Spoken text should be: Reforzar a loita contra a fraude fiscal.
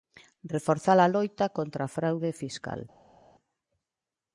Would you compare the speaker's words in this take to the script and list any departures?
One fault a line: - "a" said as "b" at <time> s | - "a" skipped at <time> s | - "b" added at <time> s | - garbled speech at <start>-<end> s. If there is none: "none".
none